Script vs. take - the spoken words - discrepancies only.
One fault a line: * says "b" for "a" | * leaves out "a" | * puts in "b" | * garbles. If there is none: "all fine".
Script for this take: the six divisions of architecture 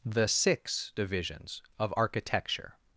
all fine